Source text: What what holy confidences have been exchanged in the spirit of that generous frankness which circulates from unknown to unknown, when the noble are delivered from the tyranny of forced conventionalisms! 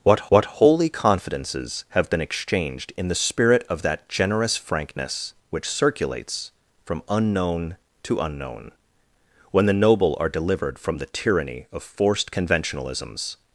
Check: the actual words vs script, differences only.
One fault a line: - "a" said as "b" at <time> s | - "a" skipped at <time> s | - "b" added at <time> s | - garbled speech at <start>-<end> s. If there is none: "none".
none